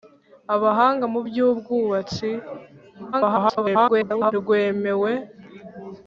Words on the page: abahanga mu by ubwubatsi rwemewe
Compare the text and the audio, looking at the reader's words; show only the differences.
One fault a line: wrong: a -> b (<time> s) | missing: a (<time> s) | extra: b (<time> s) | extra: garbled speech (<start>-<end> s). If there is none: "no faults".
extra: garbled speech (3.1-4.3 s)